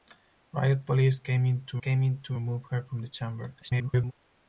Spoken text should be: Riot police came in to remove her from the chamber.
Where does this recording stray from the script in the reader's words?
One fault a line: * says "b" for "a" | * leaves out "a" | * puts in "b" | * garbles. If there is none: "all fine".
* puts in "came in to"
* garbles